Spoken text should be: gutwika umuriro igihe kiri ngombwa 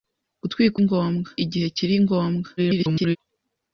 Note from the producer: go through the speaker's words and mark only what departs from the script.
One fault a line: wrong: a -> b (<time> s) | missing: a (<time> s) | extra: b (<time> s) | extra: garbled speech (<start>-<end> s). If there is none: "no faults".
wrong: umuriro -> ngombwa (0.8 s)
extra: garbled speech (2.6-3.2 s)